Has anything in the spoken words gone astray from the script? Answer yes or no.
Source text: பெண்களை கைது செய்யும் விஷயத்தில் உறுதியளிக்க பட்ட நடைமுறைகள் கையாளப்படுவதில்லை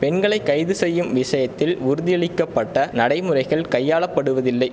no